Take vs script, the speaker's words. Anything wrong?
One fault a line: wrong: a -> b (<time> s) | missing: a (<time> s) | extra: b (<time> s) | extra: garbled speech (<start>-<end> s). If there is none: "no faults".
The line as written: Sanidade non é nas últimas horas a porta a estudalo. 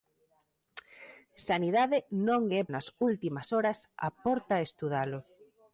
no faults